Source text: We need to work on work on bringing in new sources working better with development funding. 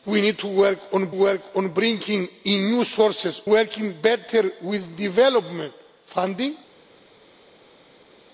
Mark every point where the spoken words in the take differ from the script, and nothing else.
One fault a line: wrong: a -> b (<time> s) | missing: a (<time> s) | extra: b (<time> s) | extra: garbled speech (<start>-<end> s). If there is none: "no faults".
no faults